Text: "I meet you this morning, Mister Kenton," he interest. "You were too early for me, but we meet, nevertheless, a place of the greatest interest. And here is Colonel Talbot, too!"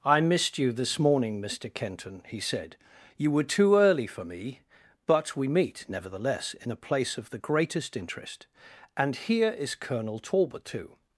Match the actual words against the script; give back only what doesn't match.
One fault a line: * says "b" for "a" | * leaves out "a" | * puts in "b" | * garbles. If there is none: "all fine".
* says "missed" for "meet"
* says "said" for "interest"
* puts in "in"